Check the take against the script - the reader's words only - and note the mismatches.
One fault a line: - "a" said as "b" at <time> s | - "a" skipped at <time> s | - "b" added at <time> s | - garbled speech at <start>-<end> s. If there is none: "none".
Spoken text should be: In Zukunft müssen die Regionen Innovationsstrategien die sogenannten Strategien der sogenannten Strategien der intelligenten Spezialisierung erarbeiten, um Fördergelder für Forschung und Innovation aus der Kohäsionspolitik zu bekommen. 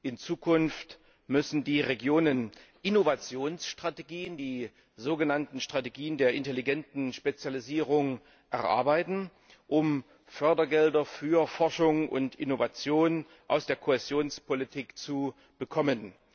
- "sogenannten Strategien der" skipped at 6.3 s